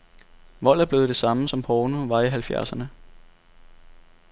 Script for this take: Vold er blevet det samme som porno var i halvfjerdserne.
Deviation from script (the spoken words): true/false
false